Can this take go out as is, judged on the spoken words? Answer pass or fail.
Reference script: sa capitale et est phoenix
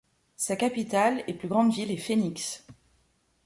fail